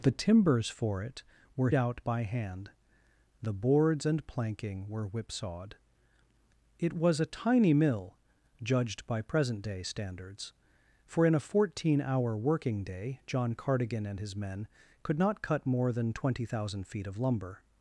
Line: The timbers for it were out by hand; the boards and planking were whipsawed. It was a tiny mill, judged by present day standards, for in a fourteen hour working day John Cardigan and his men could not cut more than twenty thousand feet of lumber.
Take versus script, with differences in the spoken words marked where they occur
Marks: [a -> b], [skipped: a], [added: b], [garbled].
The timbers for it were out by hand; the boards and planking were whipsawed. It was a tiny mill, judged by present day standards, for in a fourteen hour working day John Cardigan and his men could not cut more than twenty thousand feet of lumber.